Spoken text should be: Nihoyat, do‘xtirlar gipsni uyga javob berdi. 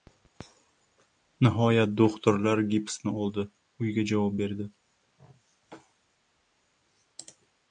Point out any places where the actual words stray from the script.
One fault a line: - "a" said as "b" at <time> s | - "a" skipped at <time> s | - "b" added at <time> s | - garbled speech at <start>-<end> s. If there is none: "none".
- "oldi" added at 3.2 s